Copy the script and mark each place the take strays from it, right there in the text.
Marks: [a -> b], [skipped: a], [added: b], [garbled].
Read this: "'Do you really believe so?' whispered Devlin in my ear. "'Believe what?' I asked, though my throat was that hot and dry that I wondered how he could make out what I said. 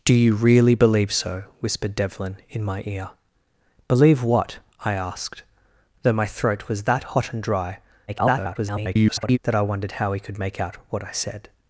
"'Do you really believe so?' whispered Devlin in my ear. "'Believe what?' I asked, though my throat was that hot and dry [garbled] that I wondered how he could make out what I said.